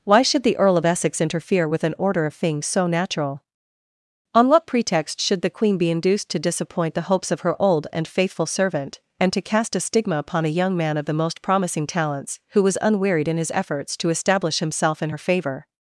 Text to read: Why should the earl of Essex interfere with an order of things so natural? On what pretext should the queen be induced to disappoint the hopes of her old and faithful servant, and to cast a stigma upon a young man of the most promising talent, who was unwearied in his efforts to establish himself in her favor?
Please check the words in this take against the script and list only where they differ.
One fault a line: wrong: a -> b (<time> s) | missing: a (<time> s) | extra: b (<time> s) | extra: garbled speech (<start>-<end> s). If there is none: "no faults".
wrong: talent -> talents (11.8 s)